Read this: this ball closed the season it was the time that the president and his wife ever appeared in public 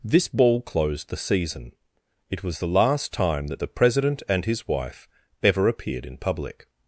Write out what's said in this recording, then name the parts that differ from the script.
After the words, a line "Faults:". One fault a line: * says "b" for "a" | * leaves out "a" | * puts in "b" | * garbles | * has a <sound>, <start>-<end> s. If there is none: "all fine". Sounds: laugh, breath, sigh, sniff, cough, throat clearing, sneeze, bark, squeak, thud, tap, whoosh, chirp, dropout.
this ball closed the season it was the last time that the president and his wife ever appeared in public
Faults:
* puts in "last"